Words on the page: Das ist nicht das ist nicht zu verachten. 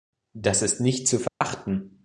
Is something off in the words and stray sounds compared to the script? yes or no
yes